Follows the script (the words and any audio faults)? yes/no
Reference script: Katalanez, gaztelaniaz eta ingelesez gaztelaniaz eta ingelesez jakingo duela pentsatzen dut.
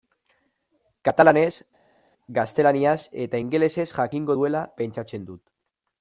no